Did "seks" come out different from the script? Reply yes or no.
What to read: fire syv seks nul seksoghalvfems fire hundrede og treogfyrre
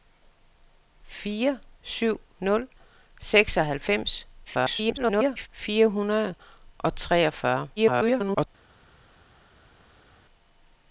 yes